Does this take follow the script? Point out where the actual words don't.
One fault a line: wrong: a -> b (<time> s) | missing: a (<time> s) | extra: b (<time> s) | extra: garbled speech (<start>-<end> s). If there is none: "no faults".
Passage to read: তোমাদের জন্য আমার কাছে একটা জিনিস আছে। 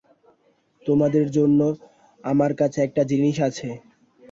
no faults